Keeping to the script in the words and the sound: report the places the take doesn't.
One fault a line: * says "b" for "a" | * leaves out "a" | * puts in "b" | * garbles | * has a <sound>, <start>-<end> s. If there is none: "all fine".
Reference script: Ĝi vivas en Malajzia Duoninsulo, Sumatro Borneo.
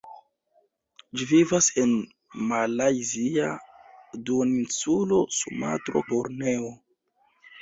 all fine